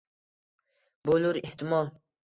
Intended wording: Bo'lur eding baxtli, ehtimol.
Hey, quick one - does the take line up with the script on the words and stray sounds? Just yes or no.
no